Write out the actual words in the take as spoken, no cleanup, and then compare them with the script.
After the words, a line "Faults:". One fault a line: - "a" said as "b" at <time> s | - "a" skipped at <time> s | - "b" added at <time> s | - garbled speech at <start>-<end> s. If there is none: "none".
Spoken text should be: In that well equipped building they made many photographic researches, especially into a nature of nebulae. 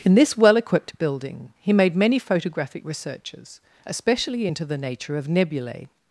In this well equipped building he made many photographic researches, especially into the nature of nebulae.
Faults:
- "that" said as "this" at 0.1 s
- "they" said as "he" at 1.6 s
- "a" said as "the" at 4.6 s